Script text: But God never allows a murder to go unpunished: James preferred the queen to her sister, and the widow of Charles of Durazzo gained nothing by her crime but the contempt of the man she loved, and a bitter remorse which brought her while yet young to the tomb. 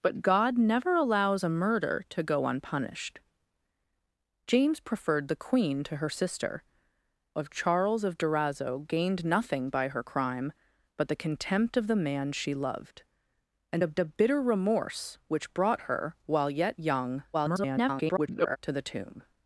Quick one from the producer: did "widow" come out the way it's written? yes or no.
no